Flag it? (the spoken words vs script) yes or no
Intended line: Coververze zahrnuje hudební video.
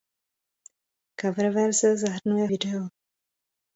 yes